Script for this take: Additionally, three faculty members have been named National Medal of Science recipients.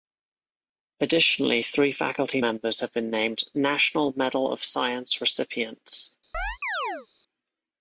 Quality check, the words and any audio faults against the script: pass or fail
fail